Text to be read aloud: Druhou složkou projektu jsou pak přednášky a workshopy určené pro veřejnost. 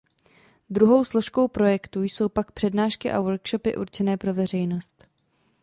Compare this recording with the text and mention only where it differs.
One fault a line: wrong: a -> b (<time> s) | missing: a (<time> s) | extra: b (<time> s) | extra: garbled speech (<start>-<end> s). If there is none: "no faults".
no faults